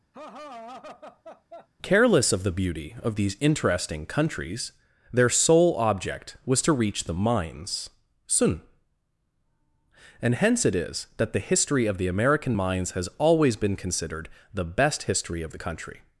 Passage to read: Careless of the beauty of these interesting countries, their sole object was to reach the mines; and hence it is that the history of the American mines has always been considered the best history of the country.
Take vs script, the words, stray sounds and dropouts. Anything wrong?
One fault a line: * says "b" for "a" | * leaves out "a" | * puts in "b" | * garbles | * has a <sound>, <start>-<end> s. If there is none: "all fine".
* has a laugh, 0.1-1.7 s
* puts in "sun"